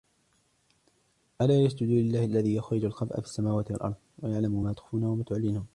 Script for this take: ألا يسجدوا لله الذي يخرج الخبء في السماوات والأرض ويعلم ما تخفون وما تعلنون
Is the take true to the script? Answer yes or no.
yes